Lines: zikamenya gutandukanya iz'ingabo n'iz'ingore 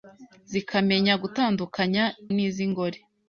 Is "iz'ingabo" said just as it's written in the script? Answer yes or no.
no